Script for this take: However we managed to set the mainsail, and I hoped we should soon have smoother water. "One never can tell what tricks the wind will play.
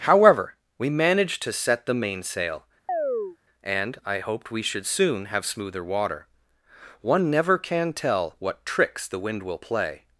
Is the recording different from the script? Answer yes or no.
no